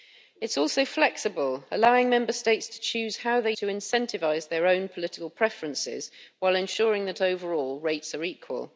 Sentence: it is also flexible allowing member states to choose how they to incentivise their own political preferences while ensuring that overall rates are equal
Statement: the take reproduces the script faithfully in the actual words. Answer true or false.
true